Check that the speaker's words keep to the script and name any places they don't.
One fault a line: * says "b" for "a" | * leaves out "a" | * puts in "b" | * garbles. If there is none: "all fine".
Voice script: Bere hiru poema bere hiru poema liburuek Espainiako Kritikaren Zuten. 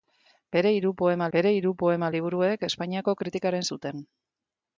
all fine